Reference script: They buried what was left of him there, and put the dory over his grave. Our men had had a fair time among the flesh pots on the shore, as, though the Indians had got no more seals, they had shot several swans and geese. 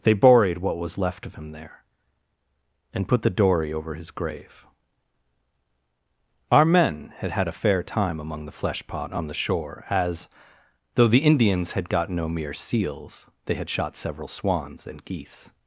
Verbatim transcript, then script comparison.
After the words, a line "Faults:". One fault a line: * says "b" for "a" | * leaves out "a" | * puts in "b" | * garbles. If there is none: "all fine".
They buried what was left of him there, and put the dory over his grave. Our men had had a fair time among the flesh pot on the shore, as, though the Indians had got no mere seals, they had shot several swans and geese.
Faults:
* says "pot" for "pots"
* says "mere" for "more"